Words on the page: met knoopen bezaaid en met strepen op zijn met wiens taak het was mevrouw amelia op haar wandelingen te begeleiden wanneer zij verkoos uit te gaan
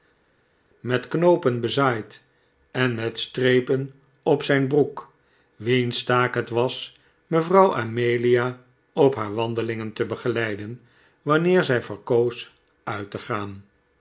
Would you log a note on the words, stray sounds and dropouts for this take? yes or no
yes